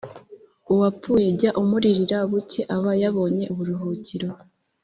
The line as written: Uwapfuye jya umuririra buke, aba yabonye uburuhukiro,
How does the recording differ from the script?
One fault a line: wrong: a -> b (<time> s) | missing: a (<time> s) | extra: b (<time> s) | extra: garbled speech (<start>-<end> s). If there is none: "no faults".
no faults